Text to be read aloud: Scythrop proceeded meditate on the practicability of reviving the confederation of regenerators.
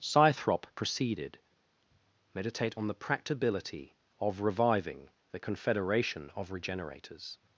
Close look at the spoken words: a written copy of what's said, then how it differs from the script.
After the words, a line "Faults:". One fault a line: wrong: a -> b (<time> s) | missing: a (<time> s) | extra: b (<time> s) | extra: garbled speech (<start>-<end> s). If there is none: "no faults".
Scythrop proceeded meditate on the practicability of reviving the confederation of regenerators.
Faults:
no faults